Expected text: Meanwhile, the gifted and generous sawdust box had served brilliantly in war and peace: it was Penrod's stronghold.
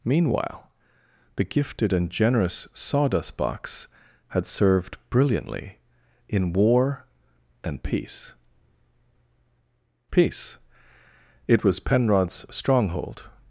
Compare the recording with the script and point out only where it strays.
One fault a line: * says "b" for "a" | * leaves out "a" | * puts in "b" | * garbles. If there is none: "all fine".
* puts in "peace"